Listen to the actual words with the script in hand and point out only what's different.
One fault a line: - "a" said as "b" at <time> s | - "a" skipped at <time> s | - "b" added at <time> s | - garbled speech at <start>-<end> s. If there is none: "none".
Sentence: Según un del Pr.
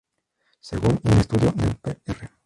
- "estudio" added at 1.2 s